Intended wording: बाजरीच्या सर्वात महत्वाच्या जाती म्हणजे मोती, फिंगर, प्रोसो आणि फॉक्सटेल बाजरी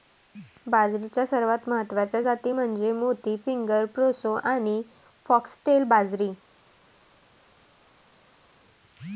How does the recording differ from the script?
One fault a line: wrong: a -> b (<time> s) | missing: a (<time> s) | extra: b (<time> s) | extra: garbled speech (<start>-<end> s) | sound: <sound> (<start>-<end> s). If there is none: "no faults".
no faults